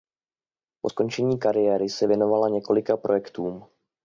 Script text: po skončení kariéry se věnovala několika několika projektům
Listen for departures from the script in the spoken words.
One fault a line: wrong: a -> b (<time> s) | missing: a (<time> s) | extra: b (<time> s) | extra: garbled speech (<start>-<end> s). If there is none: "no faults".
missing: několika (3.0 s)